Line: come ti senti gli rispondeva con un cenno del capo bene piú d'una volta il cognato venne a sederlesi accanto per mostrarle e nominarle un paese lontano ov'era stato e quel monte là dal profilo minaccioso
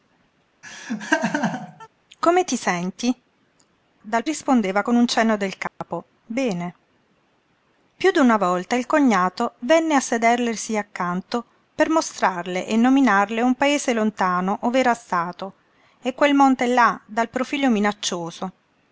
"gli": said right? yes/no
no